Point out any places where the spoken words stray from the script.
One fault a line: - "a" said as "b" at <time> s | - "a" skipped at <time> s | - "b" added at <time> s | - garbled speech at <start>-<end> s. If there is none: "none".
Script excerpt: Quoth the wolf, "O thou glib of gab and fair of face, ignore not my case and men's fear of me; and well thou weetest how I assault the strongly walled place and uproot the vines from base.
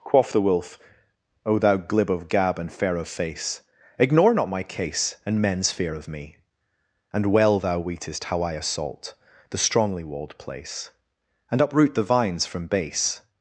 none